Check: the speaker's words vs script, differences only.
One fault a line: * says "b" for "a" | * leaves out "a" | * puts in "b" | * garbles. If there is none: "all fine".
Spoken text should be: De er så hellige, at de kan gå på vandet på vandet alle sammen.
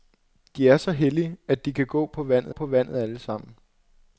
all fine